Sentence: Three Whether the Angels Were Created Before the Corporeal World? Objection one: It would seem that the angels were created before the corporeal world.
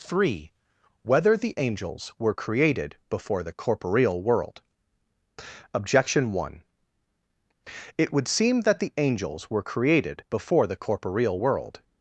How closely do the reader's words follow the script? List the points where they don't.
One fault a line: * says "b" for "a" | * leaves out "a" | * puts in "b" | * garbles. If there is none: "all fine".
all fine